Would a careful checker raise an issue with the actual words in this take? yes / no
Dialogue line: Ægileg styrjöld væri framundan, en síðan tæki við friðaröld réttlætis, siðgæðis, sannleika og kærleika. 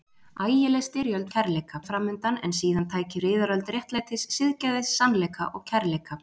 yes